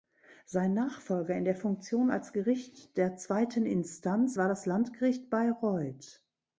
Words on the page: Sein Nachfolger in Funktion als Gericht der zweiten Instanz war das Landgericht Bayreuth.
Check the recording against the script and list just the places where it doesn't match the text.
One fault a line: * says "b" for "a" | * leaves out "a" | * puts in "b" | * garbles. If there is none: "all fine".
* puts in "der"